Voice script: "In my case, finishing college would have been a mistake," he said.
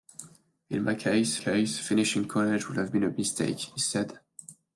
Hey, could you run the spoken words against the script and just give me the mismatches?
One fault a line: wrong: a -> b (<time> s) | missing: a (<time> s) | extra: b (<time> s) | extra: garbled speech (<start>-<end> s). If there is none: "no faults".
extra: case (1.4 s)